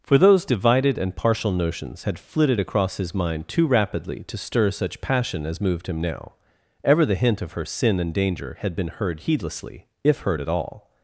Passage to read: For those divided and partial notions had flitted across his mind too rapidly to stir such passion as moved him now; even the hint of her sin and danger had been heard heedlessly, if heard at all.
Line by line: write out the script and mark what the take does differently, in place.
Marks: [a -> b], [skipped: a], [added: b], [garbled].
For those divided and partial notions had flitted across his mind too rapidly to stir such passion as moved him now; [even -> ever] the hint of her sin and danger had been heard heedlessly, if heard at all.